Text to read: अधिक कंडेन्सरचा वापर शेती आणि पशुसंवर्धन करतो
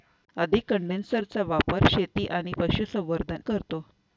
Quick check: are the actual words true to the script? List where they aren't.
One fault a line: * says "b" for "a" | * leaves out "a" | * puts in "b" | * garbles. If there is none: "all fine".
all fine